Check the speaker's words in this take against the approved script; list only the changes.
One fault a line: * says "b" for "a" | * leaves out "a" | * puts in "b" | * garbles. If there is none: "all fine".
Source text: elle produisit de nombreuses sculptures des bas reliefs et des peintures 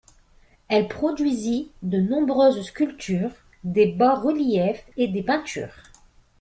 all fine